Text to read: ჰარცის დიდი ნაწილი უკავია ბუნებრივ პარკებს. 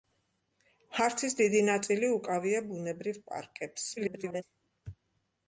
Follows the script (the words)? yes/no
no